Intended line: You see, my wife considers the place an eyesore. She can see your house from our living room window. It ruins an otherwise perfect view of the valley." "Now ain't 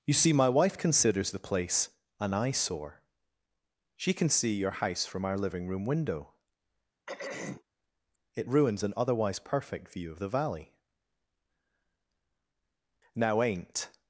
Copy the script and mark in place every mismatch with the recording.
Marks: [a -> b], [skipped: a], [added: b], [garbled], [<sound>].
You see, my wife considers the place an eyesore. She can see your house from our living room window. [throat clearing] It ruins an otherwise perfect view of the valley." "Now ain't